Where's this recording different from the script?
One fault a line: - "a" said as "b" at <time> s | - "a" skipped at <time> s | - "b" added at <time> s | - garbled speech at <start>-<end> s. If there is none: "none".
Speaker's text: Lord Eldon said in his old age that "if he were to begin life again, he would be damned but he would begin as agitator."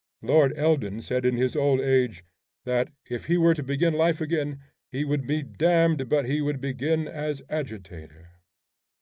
none